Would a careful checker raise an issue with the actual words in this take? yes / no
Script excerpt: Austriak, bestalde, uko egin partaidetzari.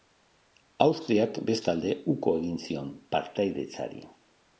yes